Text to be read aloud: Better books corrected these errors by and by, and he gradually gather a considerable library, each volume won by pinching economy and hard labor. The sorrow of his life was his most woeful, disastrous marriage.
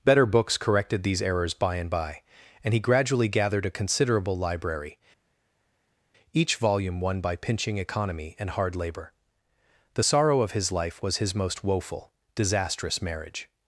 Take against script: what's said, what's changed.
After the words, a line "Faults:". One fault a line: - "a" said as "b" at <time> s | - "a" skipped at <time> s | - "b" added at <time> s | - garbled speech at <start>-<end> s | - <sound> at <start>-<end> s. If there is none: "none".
Better books corrected these errors by and by, and he gradually gathered a considerable library, each volume won by pinching economy and hard labor. The sorrow of his life was his most woeful, disastrous marriage.
Faults:
- "gather" said as "gathered" at 3.3 s